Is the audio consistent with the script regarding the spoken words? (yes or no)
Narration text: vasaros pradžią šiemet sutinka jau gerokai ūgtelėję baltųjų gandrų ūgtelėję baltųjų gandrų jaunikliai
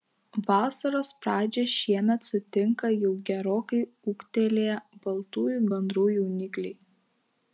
no